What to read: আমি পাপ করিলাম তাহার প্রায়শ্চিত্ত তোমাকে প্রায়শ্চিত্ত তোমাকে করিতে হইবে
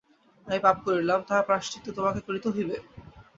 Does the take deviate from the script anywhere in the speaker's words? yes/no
yes